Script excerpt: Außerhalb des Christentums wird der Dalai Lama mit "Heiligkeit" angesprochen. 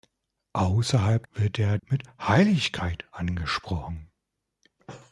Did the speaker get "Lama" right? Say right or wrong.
wrong